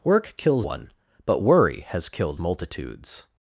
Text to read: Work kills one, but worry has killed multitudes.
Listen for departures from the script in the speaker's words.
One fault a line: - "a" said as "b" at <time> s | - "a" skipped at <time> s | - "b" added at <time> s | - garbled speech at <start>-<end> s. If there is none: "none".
none